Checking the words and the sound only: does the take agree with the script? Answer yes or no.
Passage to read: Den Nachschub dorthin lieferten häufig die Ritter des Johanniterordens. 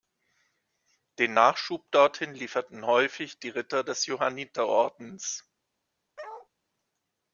no